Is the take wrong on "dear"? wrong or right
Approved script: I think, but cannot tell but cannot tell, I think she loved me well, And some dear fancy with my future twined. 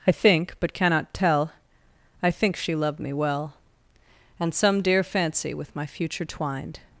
right